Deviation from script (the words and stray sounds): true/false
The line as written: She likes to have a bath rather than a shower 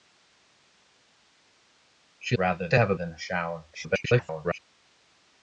true